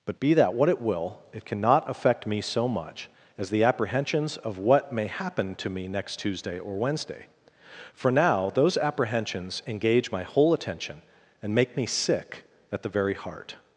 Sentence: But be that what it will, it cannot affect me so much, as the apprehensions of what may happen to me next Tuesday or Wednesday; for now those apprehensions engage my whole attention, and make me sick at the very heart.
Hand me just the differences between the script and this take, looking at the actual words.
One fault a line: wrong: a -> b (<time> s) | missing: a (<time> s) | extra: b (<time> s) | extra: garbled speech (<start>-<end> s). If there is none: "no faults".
no faults